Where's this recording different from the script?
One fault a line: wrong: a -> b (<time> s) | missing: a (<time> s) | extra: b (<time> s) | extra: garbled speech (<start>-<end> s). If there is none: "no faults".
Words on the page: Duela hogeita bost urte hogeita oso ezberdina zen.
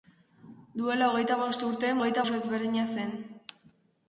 no faults